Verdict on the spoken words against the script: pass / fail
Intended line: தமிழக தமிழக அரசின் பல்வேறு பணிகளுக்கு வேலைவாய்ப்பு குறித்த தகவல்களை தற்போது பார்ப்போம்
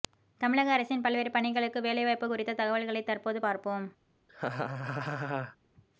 fail